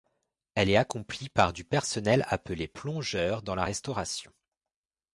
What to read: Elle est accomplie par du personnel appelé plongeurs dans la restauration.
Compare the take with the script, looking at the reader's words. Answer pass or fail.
pass